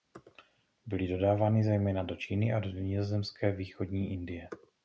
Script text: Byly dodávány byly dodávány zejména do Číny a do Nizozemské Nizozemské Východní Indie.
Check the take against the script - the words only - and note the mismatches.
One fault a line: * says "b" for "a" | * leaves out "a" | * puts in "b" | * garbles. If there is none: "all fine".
* leaves out "byly dodávány"
* leaves out "Nizozemské"